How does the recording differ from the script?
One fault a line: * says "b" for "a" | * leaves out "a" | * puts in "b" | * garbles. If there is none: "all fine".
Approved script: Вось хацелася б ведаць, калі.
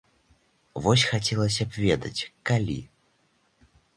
all fine